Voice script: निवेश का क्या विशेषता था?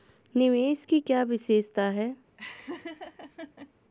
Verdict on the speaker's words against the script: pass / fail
fail